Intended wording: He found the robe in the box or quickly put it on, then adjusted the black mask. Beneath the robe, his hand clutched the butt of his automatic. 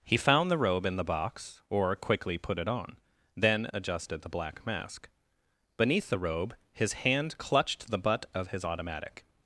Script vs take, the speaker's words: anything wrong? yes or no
no